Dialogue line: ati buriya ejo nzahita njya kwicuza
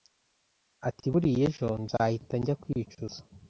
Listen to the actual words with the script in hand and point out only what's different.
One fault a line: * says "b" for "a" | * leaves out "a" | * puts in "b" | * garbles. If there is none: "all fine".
all fine